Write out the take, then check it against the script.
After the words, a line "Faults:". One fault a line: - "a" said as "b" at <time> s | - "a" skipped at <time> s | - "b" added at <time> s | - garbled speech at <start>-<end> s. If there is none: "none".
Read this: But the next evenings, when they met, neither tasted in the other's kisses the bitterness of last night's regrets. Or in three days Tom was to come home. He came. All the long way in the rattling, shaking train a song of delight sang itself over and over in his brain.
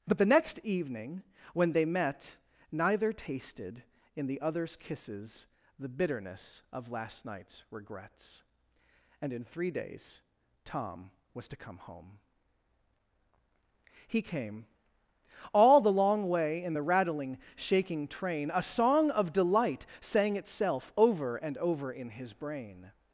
But the next evening, when they met, neither tasted in the other's kisses the bitterness of last night's regrets. And in three days Tom was to come home. He came. All the long way in the rattling, shaking train a song of delight sang itself over and over in his brain.
Faults:
- "evenings" said as "evening" at 0.6 s
- "Or" said as "And" at 9.2 s